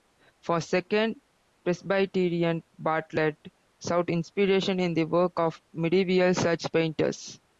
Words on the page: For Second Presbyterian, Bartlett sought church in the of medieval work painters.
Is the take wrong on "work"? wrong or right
wrong